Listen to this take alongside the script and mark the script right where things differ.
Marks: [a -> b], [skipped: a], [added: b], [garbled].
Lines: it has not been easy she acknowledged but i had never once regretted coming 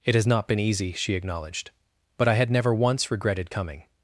it has not been easy she acknowledged but i had never once regretted coming